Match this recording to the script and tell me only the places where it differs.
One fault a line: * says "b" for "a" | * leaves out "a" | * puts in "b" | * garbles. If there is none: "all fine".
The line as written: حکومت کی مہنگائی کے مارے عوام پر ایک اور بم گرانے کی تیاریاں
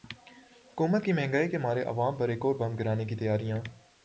all fine